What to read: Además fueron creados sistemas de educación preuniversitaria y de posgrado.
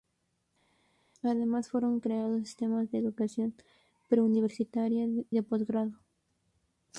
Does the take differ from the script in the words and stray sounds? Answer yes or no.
yes